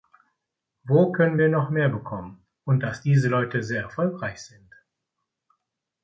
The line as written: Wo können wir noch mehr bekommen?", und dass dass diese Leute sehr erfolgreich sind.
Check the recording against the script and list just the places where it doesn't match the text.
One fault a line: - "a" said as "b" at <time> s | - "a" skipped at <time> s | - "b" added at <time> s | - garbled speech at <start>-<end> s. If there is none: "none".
- "dass" skipped at 3.0 s